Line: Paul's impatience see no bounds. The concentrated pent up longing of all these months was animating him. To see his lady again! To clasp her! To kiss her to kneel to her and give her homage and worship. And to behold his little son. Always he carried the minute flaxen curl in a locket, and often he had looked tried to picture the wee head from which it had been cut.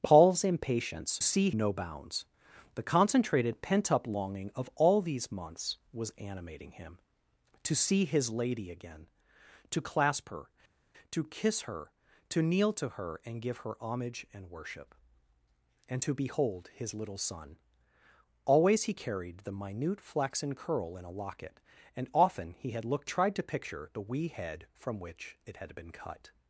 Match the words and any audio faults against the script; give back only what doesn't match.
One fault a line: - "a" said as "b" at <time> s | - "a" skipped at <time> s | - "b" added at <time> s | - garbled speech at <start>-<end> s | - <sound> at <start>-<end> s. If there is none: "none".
none